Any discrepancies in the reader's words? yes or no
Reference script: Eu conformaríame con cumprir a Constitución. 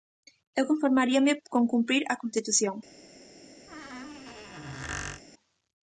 no